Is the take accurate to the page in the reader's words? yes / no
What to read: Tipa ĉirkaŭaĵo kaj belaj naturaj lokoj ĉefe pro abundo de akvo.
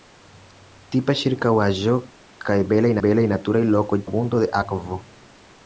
no